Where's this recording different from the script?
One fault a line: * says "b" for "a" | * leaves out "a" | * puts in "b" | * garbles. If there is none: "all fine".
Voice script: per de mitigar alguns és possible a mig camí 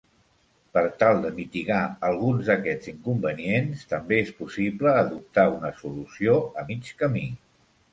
* puts in "tal"
* puts in "d'aquests inconvenients també"
* puts in "adoptar una solució"